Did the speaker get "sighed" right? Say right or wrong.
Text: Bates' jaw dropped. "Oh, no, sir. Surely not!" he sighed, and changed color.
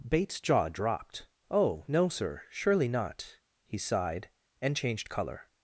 right